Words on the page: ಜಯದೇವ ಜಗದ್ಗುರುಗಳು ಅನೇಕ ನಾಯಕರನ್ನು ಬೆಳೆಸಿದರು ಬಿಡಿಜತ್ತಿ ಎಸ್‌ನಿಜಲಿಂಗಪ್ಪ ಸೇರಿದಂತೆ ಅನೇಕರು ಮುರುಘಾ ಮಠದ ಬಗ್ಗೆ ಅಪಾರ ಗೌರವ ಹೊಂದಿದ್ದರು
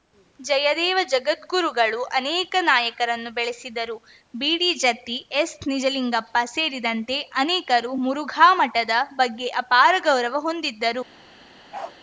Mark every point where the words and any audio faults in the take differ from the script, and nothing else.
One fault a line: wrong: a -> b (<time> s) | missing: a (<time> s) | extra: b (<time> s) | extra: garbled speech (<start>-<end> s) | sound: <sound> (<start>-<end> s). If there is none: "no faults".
sound: bark (11.7-12.0 s)